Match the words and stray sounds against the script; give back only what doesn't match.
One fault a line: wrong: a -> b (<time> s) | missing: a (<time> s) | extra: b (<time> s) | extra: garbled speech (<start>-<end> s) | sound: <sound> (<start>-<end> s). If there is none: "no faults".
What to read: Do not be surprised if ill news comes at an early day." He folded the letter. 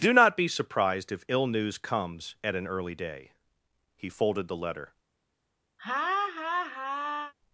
sound: laugh (5.8-7.3 s)